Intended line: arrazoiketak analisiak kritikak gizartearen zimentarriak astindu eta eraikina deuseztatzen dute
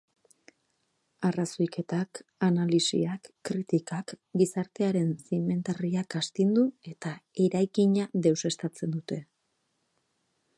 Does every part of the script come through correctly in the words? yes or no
yes